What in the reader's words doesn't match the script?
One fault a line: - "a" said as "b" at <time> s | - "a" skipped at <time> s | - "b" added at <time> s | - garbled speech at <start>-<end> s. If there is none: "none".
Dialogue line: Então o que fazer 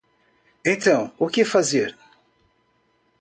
none